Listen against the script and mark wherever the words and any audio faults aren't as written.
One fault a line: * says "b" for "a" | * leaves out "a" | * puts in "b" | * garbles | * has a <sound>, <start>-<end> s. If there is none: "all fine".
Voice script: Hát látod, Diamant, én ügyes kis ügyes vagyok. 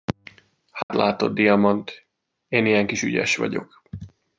* has a dropout, 0.8-0.9 s
* says "ilyen" for "ügyes"